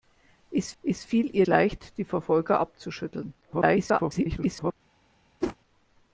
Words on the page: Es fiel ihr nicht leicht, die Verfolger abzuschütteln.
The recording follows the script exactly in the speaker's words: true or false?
false